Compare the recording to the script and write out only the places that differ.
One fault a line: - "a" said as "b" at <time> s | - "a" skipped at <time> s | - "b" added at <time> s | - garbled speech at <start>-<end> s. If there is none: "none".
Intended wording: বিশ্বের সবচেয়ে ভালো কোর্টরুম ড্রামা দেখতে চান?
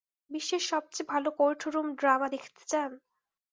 none